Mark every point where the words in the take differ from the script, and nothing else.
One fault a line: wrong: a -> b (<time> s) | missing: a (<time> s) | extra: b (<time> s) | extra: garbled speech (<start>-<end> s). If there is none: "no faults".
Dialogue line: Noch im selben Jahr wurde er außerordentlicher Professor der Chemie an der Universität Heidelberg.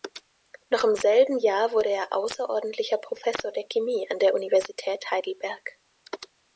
no faults